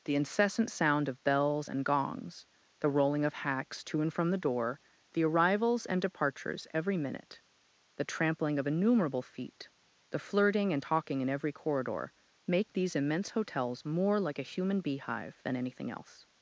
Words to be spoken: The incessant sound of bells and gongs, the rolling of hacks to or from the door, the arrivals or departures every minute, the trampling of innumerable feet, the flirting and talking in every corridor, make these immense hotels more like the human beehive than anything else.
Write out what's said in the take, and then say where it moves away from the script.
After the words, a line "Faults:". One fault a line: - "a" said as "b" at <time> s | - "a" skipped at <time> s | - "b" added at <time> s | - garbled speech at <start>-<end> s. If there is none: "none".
The incessant sound of bells and gongs, the rolling of hacks to and from the door, the arrivals and departures every minute, the trampling of innumerable feet, the flirting and talking in every corridor, make these immense hotels more like a human beehive than anything else.
Faults:
- "or" said as "and" at 4.0 s
- "or" said as "and" at 5.8 s
- "the" said as "a" at 14.4 s